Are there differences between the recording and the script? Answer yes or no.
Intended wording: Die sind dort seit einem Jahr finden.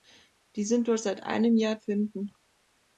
no